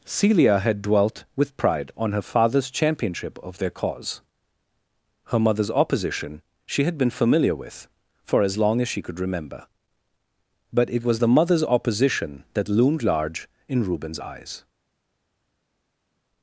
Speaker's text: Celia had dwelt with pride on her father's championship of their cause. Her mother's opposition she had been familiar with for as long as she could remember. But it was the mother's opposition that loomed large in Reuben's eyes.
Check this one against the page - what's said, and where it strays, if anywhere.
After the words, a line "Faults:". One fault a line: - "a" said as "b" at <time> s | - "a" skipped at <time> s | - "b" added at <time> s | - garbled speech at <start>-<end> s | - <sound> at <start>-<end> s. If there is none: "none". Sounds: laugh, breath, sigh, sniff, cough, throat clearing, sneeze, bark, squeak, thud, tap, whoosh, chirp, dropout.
Celia had dwelt with pride on her father's championship of their cause. Her mother's opposition she had been familiar with for as long as she could remember. But it was the mother's opposition that loomed large in Reuben's eyes.
Faults:
none